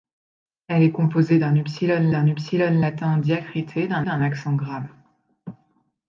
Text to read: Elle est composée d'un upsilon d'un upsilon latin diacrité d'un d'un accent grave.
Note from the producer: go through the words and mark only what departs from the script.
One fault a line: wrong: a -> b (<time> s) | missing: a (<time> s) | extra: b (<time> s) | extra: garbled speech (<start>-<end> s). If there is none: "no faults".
no faults